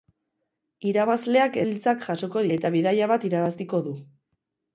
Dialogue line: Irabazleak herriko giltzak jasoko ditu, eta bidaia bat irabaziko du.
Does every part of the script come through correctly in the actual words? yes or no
no